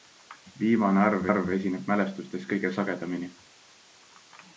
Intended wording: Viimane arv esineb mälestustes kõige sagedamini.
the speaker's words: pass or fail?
fail